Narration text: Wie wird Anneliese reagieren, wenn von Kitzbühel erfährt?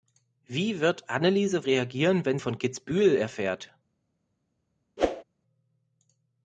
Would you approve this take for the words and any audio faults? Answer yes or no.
no